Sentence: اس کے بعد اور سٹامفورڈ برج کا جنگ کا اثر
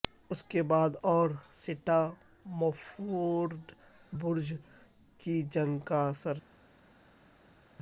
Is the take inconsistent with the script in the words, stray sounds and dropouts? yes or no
yes